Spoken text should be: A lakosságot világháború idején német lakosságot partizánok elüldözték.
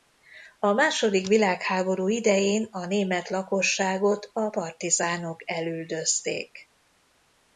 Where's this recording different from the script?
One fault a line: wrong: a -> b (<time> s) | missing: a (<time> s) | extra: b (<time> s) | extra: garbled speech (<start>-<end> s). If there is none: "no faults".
wrong: lakosságot -> második (0.7 s)
extra: a (2.7 s)
extra: a (4.3 s)